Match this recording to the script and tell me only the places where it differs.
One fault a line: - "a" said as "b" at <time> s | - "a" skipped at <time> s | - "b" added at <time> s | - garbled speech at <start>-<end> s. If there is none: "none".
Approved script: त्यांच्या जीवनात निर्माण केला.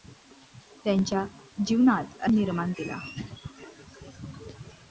none